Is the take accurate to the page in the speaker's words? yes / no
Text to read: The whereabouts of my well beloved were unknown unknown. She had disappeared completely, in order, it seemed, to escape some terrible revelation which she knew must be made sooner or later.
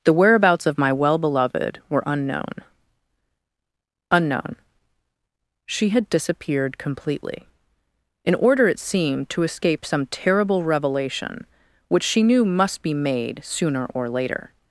yes